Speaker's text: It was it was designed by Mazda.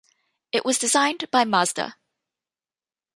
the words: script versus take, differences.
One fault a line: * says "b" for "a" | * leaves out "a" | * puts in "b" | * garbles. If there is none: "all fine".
* leaves out "it was"